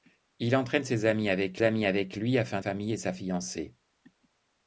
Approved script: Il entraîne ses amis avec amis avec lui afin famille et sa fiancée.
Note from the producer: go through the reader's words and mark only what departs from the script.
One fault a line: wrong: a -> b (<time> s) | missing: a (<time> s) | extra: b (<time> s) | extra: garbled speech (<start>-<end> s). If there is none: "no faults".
no faults